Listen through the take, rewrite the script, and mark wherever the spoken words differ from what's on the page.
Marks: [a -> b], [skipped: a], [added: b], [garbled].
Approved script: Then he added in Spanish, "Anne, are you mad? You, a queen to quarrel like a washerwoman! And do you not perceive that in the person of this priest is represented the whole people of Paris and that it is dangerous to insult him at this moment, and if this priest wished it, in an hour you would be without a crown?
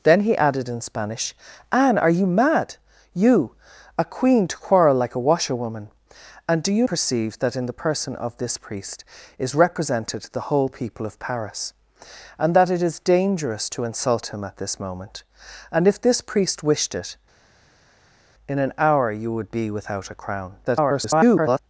Then he added in Spanish, "Anne, are you mad? You, a queen to quarrel like a washerwoman! And do you [skipped: not] perceive that in the person of this priest is represented the whole people of Paris and that it is dangerous to insult him at this moment, and if this priest wished it, in an hour you would be without a crown? [garbled]